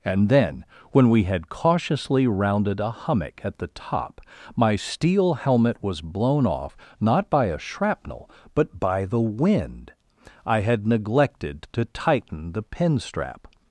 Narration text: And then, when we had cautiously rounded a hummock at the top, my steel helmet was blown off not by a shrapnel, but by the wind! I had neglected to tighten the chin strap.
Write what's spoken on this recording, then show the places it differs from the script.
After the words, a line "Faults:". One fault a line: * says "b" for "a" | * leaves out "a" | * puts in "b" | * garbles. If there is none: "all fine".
And then, when we had cautiously rounded a hummock at the top, my steel helmet was blown off not by a shrapnel, but by the wind! I had neglected to tighten the pin strap.
Faults:
* says "pin" for "chin"